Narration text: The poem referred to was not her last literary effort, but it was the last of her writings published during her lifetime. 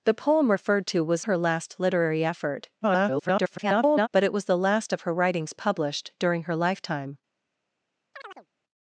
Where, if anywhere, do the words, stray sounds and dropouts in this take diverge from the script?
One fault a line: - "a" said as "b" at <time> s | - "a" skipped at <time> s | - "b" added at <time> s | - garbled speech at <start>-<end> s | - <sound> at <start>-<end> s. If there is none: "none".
- "not" skipped at 1.2 s
- garbled speech at 2.8-4.1 s
- chirp at 8.1-8.5 s